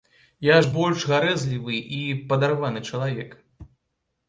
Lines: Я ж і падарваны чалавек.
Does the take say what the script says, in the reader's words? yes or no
no